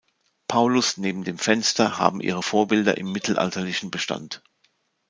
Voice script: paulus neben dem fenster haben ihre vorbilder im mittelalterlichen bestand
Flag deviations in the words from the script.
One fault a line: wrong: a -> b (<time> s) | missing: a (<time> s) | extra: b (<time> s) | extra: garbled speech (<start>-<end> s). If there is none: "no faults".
no faults